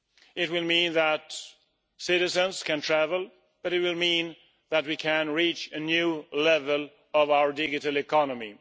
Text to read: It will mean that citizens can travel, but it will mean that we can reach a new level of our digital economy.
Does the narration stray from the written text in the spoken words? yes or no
no